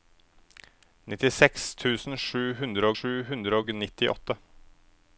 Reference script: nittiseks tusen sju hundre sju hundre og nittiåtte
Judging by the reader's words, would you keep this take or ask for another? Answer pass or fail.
pass